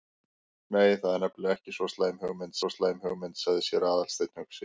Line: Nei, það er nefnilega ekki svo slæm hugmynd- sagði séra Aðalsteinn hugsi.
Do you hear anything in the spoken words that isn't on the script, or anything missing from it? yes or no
yes